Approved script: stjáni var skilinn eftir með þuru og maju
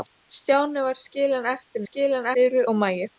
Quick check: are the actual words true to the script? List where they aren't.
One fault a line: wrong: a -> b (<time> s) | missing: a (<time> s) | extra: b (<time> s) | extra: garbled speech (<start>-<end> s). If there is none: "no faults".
wrong: með -> skilinn (1.8 s)